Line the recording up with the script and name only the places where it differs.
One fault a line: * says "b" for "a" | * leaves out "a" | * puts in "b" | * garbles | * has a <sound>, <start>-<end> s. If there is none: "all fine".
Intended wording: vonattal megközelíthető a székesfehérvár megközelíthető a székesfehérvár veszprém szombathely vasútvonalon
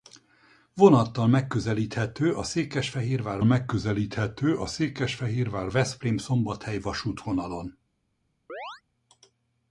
* has a chirp, 8.5-8.8 s